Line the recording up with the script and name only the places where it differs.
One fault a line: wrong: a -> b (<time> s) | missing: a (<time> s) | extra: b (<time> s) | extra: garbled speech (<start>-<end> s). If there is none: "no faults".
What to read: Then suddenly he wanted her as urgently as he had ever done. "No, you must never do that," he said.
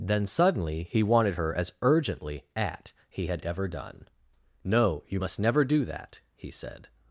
wrong: as -> at (2.5 s)